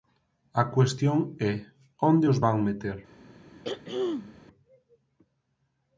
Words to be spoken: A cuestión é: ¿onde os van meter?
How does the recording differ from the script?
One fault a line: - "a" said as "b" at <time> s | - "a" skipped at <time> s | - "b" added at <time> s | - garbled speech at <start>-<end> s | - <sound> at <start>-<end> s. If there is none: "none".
- throat clearing at 3.6-4.4 s